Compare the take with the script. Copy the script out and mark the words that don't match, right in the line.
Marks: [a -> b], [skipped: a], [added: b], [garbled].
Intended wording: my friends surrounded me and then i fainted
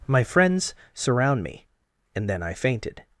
my friends [surrounded -> surround] me and then i fainted